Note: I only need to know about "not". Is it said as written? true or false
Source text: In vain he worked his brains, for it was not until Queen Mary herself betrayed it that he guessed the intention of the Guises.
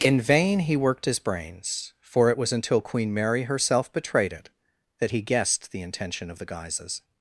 false